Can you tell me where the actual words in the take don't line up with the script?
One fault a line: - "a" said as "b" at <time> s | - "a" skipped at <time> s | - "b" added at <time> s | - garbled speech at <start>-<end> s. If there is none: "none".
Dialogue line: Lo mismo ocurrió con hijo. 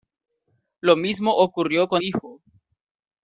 none